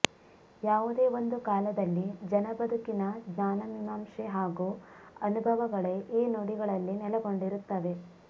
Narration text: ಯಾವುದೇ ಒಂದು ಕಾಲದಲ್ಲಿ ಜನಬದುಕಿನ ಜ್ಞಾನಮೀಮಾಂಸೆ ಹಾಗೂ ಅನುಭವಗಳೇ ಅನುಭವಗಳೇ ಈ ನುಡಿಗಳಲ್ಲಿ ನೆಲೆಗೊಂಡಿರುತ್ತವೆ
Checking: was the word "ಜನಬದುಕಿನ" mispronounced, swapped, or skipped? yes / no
no